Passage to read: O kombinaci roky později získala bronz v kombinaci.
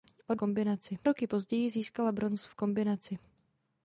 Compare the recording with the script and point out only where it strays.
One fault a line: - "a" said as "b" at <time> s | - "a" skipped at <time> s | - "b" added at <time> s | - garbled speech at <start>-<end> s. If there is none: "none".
none